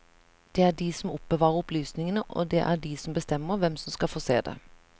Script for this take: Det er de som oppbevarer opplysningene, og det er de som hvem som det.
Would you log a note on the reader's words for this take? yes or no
yes